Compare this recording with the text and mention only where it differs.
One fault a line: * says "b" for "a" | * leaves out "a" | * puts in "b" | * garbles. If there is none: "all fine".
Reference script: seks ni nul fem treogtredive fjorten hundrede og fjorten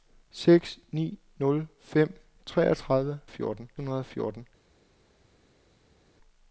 all fine